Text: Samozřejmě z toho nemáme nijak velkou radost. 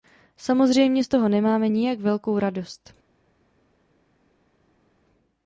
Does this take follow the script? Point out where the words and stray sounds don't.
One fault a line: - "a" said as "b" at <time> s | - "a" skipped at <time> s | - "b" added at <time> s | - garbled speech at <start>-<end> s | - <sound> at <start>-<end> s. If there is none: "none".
none